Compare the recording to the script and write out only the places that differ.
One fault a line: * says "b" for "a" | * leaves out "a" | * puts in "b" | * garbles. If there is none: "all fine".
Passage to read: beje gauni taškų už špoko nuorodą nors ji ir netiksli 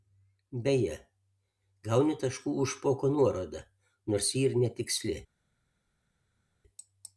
all fine